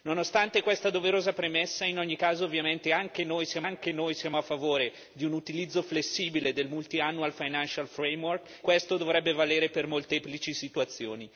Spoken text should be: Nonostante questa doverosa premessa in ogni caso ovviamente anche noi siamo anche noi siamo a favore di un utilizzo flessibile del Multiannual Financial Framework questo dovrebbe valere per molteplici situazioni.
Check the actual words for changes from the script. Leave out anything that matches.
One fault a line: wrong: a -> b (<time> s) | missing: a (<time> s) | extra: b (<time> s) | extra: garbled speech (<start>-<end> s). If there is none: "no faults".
no faults